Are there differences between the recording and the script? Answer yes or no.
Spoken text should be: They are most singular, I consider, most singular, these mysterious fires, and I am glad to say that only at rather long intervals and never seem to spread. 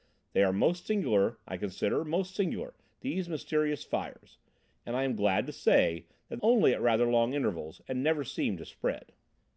no